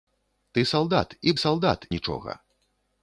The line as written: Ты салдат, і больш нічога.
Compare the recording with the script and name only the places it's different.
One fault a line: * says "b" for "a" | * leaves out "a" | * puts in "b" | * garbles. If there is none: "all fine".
* says "салдат" for "больш"